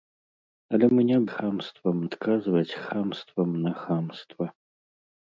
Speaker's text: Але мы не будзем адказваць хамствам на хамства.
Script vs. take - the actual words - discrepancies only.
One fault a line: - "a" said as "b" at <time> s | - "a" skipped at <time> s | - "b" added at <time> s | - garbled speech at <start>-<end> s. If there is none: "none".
- "будзем" said as "хамствам" at 1.3 s